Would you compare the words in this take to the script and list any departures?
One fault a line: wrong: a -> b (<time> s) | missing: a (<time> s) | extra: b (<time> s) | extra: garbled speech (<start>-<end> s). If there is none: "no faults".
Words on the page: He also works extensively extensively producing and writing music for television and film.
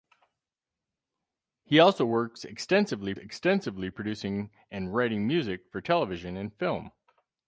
no faults